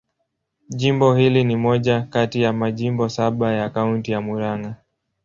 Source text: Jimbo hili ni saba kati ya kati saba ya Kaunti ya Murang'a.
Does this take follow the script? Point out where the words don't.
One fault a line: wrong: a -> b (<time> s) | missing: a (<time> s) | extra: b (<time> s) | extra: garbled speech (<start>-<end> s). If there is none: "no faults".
wrong: saba -> moja (1.6 s)
wrong: kati -> majimbo (2.5 s)